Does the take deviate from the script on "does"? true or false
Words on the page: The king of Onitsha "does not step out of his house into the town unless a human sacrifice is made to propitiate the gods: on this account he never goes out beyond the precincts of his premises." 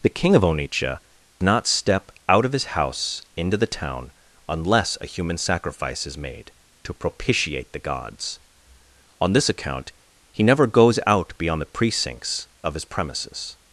true